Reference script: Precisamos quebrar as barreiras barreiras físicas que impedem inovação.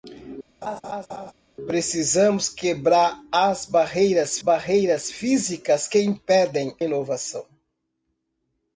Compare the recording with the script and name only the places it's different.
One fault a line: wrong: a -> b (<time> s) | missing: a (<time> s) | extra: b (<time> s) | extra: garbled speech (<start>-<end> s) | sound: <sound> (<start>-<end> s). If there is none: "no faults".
sound: laugh (0.6-1.3 s)